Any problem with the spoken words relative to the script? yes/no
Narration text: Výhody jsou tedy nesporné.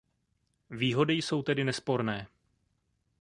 no